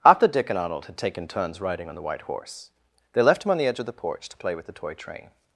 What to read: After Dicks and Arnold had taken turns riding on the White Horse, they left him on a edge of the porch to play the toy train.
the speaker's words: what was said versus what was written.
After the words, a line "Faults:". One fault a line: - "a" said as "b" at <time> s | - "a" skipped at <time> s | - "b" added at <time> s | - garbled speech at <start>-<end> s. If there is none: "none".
After Dick and Arnold had taken turns riding on the White Horse, they left him on the edge of the porch to play with the toy train.
Faults:
- "Dicks" said as "Dick" at 0.3 s
- "a" said as "the" at 3.6 s
- "with" added at 4.5 s